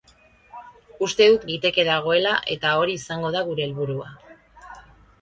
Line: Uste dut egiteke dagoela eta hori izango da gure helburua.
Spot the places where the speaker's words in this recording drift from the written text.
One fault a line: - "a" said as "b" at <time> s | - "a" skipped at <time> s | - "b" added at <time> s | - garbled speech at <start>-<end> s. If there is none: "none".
none